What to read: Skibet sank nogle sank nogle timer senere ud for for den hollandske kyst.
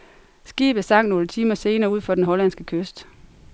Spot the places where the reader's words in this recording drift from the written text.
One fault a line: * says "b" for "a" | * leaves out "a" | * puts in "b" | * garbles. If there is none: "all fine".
* leaves out "sank nogle"
* leaves out "for"